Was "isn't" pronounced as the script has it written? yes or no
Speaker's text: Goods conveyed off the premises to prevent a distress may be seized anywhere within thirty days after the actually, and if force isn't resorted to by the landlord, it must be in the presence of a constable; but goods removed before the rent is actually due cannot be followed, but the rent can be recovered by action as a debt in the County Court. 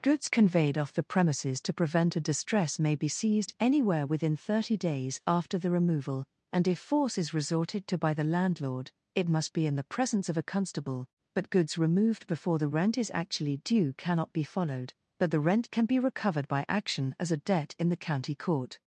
no